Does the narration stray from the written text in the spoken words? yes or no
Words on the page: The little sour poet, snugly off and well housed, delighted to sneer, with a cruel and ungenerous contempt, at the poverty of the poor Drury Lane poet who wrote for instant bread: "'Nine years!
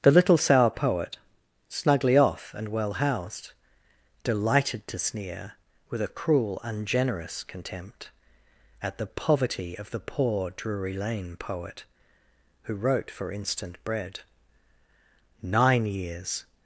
yes